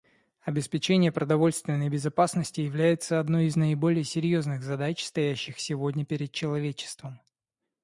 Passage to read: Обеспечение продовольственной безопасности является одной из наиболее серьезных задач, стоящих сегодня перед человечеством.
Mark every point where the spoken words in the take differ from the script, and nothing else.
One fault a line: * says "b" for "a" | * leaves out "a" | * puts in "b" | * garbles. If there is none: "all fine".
all fine